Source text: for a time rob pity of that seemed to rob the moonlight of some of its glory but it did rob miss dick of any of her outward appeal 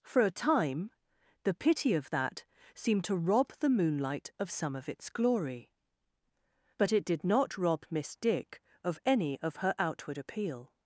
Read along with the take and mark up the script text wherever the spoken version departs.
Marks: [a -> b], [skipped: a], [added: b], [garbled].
for a time [rob -> the] pity of that seemed to rob the moonlight of some of its glory but it did [added: not] rob miss dick of any of her outward appeal